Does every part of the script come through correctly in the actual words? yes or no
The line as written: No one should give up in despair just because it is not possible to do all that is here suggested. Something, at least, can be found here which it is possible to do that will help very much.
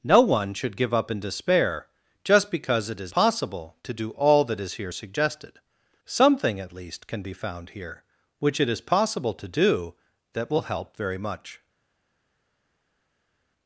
no